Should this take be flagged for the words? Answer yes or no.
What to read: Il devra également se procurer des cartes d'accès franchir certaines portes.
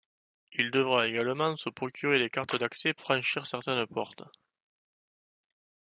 no